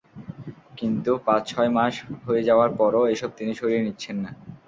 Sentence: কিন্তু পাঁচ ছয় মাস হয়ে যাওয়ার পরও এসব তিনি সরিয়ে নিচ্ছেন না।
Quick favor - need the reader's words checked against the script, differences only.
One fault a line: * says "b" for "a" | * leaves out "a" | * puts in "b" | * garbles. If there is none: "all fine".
all fine